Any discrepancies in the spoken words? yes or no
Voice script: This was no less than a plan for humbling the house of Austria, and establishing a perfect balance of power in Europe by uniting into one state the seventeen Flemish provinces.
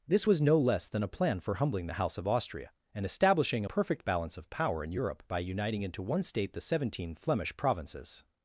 no